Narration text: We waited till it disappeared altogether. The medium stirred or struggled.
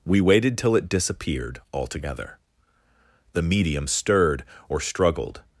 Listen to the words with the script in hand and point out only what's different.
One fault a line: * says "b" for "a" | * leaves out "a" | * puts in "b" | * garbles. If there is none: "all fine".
all fine